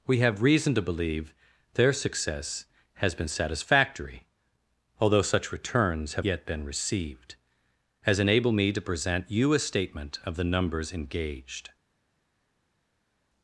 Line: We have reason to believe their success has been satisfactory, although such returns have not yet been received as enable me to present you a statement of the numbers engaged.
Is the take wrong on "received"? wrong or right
right